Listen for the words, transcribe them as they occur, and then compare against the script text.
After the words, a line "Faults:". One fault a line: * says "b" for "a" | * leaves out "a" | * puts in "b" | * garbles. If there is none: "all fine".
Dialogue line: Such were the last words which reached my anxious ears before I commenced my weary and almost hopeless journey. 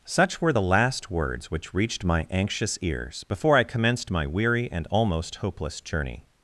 Such were the last words which reached my anxious ears before I commenced my weary and almost hopeless journey.
Faults:
all fine